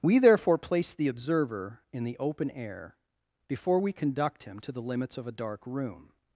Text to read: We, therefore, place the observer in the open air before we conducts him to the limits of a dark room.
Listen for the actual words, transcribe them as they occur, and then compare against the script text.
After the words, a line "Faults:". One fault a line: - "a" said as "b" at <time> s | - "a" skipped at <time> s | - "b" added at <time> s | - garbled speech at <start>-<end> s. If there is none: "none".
We, therefore, place the observer in the open air before we conduct him to the limits of a dark room.
Faults:
- "conducts" said as "conduct" at 3.9 s